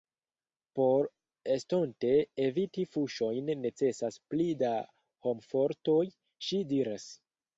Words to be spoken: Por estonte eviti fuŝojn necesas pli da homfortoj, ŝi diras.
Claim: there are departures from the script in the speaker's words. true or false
false